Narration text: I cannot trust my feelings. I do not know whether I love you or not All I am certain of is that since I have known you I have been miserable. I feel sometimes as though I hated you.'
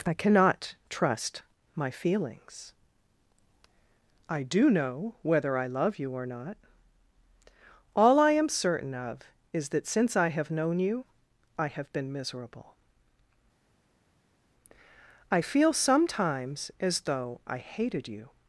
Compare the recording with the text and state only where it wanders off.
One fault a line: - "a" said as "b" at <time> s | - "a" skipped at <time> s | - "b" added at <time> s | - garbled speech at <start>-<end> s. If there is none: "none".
- "not" skipped at 4.7 s